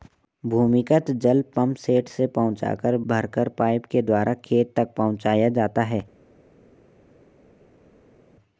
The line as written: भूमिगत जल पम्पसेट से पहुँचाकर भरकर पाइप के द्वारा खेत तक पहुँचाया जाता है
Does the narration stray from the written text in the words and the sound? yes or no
no